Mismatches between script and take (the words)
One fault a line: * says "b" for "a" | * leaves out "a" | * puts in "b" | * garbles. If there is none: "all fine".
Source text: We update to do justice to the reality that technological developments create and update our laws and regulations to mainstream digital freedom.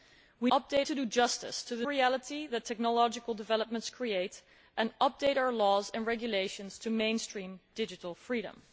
all fine